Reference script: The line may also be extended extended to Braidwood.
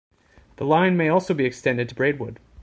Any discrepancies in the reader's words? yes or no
yes